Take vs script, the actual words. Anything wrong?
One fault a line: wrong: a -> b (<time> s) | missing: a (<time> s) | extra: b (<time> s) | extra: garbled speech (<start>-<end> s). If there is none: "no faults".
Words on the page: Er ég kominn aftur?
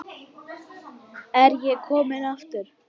no faults